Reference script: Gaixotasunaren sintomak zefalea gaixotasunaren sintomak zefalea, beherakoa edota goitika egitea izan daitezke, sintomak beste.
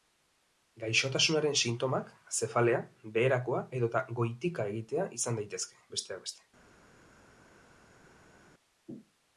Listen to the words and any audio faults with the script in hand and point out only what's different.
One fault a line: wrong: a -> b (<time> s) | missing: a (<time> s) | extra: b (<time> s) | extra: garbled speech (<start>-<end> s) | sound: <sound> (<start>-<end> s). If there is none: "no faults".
missing: gaixotasunaren sintomak zefalea (2.8 s)
wrong: sintomak -> besteak (6.0 s)